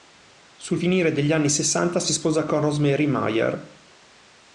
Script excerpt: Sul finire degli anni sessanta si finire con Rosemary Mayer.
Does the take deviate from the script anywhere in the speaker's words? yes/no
yes